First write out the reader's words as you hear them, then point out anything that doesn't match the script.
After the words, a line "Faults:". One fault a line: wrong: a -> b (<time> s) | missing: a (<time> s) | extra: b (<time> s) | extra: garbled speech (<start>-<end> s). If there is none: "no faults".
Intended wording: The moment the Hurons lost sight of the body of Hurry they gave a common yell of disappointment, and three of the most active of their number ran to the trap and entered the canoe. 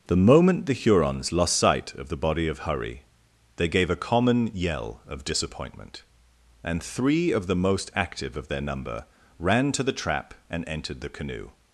The moment the Hurons lost sight of the body of Hurry they gave a common yell of disappointment, and three of the most active of their number ran to the trap and entered the canoe.
Faults:
no faults